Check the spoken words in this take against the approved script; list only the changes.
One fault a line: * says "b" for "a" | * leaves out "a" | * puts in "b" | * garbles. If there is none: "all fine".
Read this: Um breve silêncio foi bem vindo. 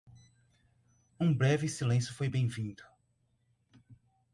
all fine